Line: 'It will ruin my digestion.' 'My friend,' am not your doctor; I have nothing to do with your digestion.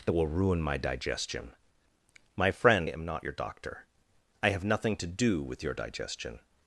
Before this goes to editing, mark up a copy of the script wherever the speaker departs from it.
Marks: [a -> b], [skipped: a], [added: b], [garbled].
'It will ruin my digestion.' 'My friend,' am not your doctor; I have nothing to do with your digestion.